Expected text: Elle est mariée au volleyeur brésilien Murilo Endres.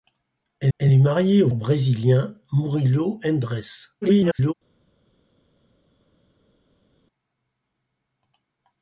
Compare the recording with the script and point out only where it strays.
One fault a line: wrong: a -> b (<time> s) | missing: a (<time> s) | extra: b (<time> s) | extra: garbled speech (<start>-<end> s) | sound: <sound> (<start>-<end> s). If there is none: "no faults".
extra: elle (0.8 s)
missing: volleyeur (1.5 s)
extra: garbled speech (4.0-4.5 s)